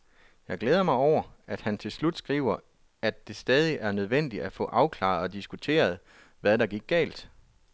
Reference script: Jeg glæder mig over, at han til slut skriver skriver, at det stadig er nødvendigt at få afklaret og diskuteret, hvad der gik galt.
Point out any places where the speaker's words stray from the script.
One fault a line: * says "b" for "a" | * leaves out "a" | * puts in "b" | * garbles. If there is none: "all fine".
* leaves out "skriver"